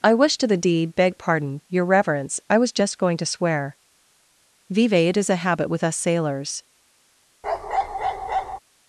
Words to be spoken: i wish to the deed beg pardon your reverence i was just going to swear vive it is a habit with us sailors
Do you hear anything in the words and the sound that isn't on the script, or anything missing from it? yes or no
yes